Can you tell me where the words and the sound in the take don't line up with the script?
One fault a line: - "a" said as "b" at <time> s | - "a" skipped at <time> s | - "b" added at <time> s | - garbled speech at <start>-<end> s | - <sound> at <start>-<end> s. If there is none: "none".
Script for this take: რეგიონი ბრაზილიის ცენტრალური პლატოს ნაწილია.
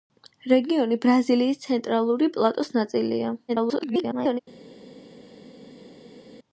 - garbled speech at 3.5-4.4 s